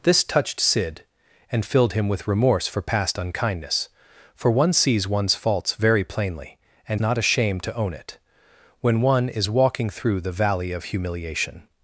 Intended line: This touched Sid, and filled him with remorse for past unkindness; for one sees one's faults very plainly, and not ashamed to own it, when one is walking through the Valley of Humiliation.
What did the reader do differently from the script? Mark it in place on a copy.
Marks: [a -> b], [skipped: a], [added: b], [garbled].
This touched Sid, and filled him with remorse for past unkindness; for one sees one's faults very plainly, and not ashamed to own it, when one is walking through the Valley of Humiliation.